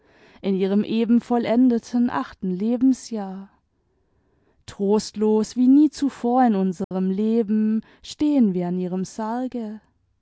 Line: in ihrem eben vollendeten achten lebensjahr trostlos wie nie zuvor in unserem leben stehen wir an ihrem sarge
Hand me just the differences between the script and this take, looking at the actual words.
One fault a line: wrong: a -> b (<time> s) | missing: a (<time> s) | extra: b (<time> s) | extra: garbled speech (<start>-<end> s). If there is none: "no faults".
no faults